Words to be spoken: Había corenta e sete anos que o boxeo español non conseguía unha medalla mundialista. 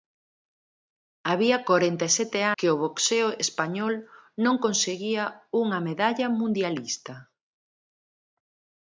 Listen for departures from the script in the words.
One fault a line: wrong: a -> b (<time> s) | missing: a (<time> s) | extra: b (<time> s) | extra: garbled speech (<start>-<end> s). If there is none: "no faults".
missing: anos (2.4 s)